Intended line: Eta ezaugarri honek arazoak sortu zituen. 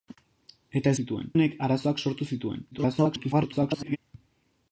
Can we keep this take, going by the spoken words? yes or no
no